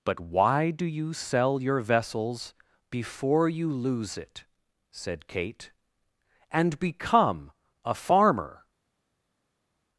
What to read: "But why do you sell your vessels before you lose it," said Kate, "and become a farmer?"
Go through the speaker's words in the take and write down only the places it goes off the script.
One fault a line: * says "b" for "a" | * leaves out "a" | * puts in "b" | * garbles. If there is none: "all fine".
all fine